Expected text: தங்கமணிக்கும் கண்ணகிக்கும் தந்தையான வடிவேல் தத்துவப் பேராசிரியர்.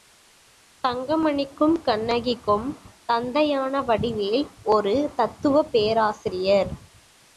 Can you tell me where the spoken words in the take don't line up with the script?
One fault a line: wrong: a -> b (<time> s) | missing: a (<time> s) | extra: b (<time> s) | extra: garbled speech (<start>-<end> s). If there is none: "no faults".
extra: ஒரு (4.7 s)